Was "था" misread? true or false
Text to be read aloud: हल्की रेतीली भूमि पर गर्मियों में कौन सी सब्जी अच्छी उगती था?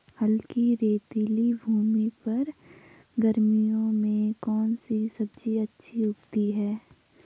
true